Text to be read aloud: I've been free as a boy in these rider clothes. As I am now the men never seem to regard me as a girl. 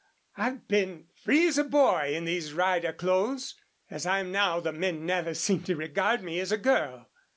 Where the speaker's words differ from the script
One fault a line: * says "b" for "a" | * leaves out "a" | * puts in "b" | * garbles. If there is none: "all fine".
all fine